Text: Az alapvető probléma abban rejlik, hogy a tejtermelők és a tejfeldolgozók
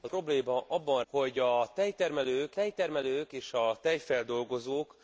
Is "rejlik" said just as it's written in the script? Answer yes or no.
no